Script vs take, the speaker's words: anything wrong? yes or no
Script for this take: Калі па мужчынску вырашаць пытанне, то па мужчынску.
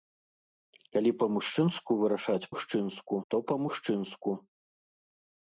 yes